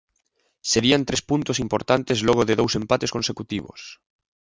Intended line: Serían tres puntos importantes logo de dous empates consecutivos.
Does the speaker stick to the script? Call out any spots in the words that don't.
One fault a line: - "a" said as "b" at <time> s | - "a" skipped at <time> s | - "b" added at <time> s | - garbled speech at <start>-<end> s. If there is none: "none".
none